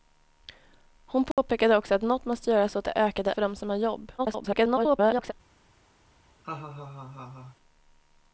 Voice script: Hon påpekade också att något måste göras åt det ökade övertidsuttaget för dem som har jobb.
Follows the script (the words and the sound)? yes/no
no